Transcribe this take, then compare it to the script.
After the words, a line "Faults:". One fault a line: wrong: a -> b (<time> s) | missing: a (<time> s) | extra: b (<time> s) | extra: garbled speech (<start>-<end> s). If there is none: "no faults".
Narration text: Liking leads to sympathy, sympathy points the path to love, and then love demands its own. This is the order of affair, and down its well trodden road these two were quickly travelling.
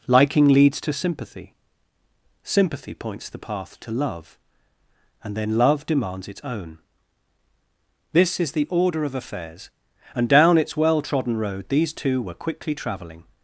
Liking leads to sympathy, sympathy points the path to love, and then love demands its own. This is the order of affairs, and down its well trodden road these two were quickly travelling.
Faults:
wrong: affair -> affairs (9.1 s)